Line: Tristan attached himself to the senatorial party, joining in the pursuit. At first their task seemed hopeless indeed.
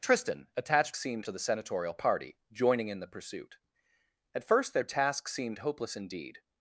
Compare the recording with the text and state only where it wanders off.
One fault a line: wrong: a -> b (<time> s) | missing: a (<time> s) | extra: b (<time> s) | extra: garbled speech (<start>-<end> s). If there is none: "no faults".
wrong: himself -> seemed (1.0 s)